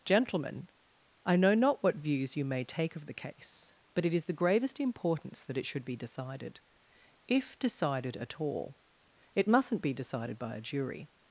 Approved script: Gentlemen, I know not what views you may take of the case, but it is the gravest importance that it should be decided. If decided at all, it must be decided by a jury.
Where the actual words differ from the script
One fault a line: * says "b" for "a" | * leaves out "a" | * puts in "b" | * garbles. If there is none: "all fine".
* says "mustn't" for "must"